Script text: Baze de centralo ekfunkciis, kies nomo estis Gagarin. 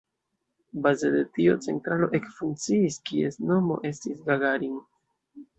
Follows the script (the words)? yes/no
no